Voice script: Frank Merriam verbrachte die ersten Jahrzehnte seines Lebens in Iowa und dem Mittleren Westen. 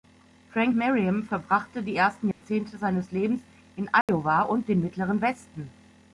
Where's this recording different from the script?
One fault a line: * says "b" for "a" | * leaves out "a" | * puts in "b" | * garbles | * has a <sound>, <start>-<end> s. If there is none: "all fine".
* has a dropout, 2.3-2.4 s
* has a dropout, 4.0-4.1 s